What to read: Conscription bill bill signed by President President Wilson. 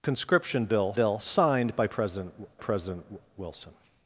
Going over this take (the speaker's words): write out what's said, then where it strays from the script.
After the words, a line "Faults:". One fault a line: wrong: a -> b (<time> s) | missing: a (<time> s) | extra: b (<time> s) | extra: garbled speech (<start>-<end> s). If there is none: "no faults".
Conscription bill bill signed by President President Wilson.
Faults:
no faults